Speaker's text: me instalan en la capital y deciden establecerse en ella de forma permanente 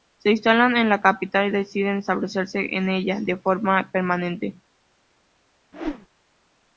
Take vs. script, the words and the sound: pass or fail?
fail